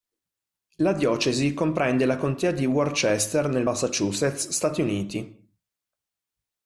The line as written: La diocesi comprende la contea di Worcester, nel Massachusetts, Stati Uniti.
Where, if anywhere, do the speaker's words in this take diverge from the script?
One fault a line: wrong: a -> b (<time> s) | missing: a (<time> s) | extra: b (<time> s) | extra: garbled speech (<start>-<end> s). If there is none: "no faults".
no faults